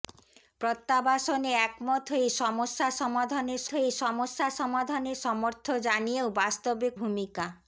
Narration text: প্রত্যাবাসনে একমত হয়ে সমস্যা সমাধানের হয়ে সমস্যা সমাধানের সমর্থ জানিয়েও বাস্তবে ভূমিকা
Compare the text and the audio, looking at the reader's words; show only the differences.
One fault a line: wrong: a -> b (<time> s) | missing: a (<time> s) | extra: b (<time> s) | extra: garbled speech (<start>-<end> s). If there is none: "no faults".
no faults